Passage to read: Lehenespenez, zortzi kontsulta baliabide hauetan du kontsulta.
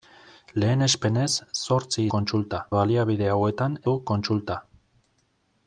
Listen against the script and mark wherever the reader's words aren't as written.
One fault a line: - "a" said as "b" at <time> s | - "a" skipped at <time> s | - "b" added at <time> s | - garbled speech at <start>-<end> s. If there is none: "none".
none